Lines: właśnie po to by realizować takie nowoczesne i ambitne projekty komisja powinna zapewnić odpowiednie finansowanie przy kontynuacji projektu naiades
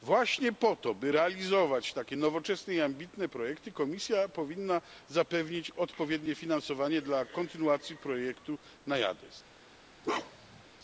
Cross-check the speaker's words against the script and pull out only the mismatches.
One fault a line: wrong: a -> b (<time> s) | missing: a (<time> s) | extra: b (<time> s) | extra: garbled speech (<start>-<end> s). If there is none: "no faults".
wrong: przy -> dla (7.0 s)